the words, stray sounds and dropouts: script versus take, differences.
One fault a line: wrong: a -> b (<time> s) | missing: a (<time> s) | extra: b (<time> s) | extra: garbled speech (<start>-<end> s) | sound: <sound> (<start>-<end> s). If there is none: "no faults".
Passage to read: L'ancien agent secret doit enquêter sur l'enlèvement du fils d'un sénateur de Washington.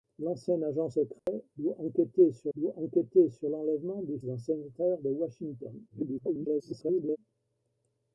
sound: dropout (1.2-1.3 s)
extra: doit enquêter sur (2.6 s)
missing: fils (4.2 s)
extra: garbled speech (5.9-7.2 s)